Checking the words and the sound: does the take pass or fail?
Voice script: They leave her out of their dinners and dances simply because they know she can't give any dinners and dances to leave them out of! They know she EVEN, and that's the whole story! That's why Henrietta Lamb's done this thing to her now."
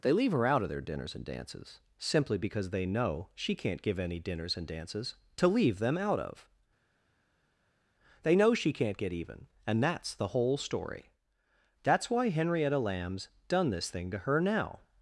fail